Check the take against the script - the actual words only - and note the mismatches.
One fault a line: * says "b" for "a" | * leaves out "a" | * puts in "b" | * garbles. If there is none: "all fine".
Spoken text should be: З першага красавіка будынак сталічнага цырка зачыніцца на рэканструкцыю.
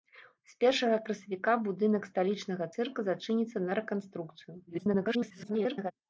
* garbles